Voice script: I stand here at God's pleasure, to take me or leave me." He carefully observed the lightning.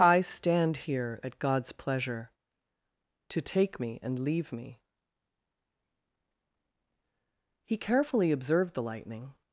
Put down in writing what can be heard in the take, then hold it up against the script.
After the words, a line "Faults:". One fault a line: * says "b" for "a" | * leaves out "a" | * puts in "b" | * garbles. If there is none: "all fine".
I stand here at God's pleasure, to take me and leave me." He carefully observed the lightning.
Faults:
* says "and" for "or"